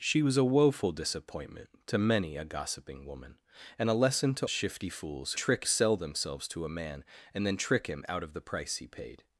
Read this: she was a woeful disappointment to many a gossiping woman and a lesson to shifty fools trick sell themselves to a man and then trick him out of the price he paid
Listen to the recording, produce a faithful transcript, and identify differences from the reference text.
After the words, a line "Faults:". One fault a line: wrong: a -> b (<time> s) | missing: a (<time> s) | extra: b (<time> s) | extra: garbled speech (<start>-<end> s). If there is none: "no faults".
she was a woeful disappointment to many a gossiping woman and a lesson to shifty fools trick sell themselves to a man and then trick him out of the price he paid
Faults:
no faults